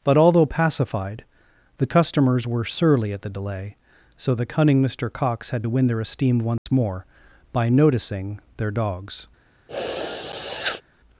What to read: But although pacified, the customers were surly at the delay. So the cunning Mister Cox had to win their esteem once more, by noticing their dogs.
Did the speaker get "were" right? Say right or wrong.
right